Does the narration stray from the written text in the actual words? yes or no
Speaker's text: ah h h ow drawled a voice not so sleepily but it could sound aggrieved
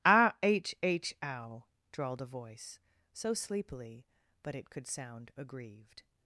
yes